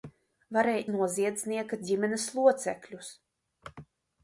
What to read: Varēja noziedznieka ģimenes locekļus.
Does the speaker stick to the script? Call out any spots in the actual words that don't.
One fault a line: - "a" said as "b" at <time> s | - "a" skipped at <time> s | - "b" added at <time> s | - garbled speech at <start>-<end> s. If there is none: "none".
none